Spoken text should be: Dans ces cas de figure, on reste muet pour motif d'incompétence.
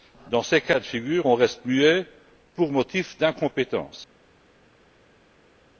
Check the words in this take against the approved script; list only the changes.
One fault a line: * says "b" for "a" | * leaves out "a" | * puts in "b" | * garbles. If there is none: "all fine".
all fine